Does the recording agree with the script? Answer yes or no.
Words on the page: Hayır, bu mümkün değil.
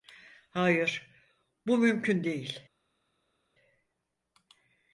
yes